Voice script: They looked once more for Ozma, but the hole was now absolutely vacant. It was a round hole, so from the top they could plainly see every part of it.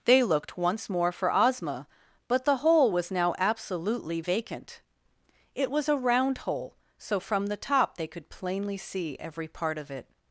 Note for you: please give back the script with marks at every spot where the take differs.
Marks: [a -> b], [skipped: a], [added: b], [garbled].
They looked once more for Ozma, but the hole was now absolutely vacant. It was a round hole, so from the top they could plainly see every part of it.